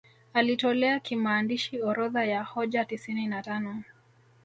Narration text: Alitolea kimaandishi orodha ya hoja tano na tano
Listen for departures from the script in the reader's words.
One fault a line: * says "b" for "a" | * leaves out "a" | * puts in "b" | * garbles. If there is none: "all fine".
* says "tisini" for "tano"